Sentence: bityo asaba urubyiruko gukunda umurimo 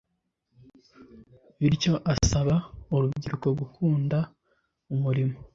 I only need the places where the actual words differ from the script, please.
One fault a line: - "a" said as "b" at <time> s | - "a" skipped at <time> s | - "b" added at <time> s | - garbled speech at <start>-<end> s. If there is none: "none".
none